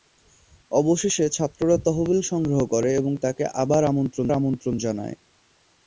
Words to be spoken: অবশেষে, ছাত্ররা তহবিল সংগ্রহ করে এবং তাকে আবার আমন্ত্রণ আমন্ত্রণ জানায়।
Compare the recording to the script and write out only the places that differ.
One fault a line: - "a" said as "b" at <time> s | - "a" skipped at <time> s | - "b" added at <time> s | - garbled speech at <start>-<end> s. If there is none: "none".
none